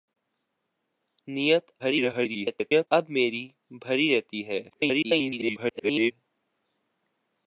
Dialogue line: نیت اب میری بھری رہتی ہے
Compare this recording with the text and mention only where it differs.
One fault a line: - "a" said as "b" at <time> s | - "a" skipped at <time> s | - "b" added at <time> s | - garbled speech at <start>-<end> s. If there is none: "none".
- garbled speech at 1.8-2.9 s
- garbled speech at 4.7-6.1 s